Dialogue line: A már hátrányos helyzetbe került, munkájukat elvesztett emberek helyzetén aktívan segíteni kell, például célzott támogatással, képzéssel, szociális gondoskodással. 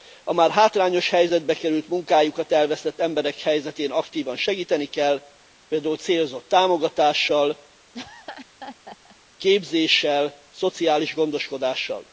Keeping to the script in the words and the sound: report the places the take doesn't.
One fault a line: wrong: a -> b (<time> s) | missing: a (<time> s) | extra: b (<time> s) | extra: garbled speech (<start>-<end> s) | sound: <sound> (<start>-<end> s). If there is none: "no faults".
sound: laugh (7.9-9.2 s)